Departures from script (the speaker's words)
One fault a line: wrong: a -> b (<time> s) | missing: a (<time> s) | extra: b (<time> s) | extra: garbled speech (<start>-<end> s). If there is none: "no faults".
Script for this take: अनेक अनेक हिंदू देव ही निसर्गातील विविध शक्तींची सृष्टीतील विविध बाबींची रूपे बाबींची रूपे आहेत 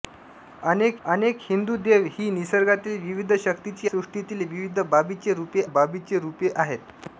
no faults